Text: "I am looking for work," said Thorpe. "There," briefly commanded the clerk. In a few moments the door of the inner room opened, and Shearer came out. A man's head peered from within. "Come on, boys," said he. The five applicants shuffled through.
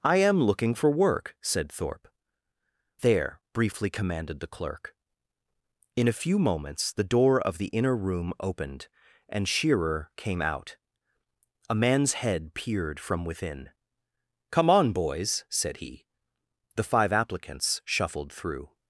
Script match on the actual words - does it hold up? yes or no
yes